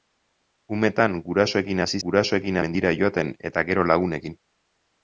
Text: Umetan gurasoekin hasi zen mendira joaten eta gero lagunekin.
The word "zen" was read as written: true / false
false